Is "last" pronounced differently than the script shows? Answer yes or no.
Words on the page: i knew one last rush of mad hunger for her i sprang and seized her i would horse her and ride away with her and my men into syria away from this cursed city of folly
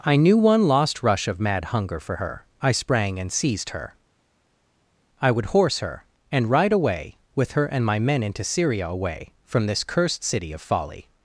yes